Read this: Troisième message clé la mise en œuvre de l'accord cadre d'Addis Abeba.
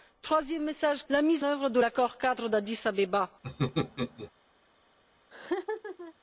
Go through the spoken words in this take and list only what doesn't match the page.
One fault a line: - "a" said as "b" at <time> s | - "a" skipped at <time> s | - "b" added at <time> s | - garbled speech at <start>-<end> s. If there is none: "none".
- "clé" skipped at 1.1 s
- "en" skipped at 1.4 s